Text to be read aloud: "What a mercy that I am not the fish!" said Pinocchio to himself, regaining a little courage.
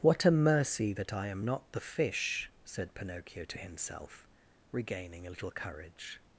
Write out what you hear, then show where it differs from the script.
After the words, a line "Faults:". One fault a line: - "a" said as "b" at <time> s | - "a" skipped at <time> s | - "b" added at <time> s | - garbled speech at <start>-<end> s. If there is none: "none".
"What a mercy that I am not the fish!" said Pinocchio to himself, regaining a little courage.
Faults:
none